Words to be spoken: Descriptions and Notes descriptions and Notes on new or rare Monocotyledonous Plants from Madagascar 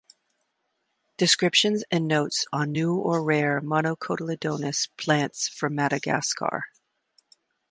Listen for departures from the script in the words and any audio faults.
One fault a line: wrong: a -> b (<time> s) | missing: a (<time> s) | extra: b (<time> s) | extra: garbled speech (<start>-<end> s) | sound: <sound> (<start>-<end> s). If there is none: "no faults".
missing: descriptions and Notes (2.5 s)